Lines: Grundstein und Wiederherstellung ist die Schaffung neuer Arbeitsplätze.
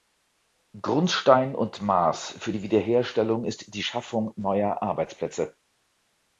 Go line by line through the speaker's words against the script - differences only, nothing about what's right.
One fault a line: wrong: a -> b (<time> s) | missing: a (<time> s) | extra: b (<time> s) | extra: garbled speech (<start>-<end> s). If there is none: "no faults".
extra: Maß für die (1.8 s)